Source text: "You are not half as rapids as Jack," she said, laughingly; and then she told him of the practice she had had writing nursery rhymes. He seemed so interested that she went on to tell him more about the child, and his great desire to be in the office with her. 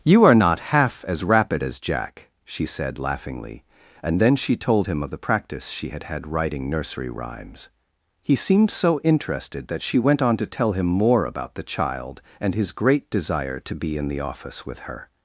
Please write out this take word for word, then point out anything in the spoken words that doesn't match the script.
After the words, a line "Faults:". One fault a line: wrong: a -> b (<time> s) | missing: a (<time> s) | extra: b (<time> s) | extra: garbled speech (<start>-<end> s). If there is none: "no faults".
"You are not half as rapid as Jack," she said, laughingly; and then she told him of the practice she had had writing nursery rhymes. He seemed so interested that she went on to tell him more about the child, and his great desire to be in the office with her.
Faults:
wrong: rapids -> rapid (1.2 s)